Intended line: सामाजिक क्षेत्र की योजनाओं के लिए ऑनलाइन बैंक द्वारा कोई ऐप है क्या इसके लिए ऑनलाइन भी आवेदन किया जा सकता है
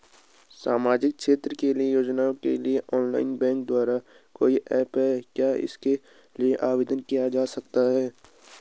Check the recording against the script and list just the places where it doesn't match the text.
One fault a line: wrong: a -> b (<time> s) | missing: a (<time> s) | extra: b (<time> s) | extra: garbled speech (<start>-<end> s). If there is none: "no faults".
missing: ऑनलाइन भी (6.5 s)